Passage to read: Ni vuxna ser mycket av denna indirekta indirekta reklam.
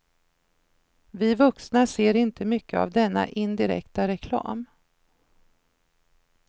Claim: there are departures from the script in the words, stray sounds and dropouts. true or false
true